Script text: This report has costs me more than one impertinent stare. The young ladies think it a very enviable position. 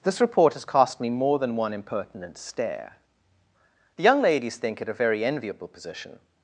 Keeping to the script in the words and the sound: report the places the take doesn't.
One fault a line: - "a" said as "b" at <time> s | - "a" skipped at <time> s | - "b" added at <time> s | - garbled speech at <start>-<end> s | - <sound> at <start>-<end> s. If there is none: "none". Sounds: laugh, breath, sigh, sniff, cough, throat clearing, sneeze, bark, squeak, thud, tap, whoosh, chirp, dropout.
- "costs" said as "cost" at 0.7 s